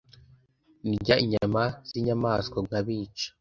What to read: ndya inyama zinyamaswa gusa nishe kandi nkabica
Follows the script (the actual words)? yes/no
no